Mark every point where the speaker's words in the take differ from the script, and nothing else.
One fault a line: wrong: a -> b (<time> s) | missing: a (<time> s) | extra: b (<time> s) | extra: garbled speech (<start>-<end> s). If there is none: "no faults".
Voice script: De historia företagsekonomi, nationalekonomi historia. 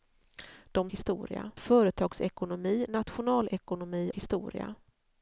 no faults